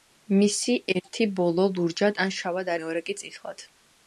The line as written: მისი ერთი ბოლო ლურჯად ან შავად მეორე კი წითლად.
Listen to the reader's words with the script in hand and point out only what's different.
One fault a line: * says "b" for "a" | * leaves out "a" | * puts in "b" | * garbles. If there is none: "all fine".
all fine